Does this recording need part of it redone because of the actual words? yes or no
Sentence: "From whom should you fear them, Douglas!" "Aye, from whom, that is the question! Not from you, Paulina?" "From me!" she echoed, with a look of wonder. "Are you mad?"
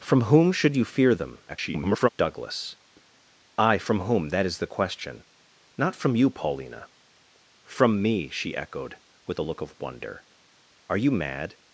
yes